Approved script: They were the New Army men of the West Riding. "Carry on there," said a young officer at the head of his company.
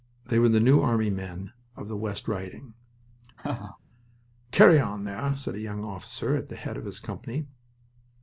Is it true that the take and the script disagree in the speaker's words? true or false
false